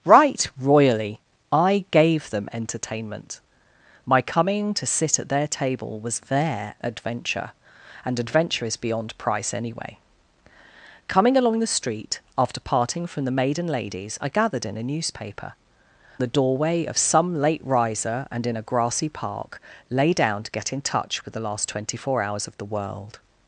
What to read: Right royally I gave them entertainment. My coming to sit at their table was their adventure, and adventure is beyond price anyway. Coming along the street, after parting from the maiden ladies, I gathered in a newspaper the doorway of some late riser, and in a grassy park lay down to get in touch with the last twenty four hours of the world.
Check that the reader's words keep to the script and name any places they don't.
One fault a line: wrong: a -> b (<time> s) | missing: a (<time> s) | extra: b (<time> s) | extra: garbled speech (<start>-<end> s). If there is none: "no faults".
no faults